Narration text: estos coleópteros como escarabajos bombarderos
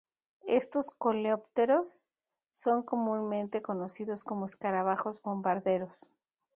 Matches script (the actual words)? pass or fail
fail